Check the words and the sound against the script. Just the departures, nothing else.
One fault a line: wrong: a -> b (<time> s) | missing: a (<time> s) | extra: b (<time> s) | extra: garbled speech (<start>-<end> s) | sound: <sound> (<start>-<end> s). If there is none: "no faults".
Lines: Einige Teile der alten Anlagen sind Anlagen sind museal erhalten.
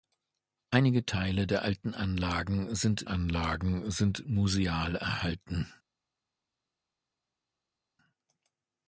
no faults